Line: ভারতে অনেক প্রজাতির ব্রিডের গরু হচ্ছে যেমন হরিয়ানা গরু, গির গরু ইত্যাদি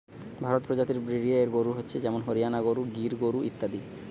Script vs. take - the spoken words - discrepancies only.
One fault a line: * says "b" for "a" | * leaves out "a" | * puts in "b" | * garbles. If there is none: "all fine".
* leaves out "অনেক"